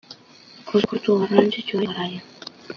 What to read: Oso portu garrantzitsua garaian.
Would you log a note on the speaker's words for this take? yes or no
no